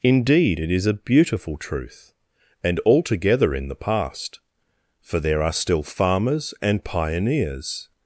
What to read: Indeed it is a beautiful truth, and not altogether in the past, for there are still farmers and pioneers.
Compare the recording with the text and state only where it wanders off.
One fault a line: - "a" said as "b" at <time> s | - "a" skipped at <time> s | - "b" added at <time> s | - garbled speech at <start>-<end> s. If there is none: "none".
- "not" skipped at 2.8 s